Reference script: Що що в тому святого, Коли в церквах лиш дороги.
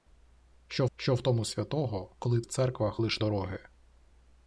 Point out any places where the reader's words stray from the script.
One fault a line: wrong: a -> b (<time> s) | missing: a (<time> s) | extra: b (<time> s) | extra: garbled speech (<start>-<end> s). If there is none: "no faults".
no faults